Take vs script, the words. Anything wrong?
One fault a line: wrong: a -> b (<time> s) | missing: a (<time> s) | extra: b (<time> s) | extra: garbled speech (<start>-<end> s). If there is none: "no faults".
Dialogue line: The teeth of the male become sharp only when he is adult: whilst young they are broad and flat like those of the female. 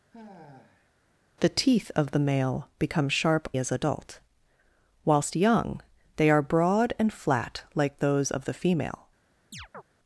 missing: only when he (3.5 s)